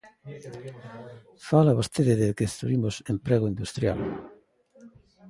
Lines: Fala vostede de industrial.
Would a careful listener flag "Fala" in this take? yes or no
no